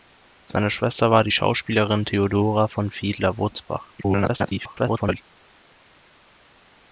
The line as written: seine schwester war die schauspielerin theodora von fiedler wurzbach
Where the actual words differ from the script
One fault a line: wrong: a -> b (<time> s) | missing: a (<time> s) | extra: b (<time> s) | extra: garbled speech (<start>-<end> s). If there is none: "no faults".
extra: garbled speech (4.0-5.2 s)